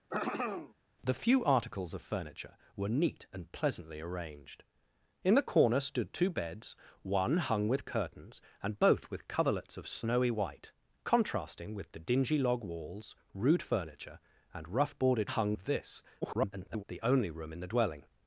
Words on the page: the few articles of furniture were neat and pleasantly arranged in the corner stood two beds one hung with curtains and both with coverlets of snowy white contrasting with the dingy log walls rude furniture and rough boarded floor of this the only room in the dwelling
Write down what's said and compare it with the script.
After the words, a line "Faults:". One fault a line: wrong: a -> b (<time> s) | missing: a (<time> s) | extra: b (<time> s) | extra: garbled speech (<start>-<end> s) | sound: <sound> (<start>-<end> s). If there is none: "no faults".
the few articles of furniture were neat and pleasantly arranged in the corner stood two beds one hung with curtains and both with coverlets of snowy white contrasting with the dingy log walls rude furniture and rough boarded hung of this [garbled] the only room in the dwelling
Faults:
sound: throat clearing (0.1-0.7 s)
wrong: floor -> hung (15.2 s)
extra: garbled speech (16.2-16.8 s)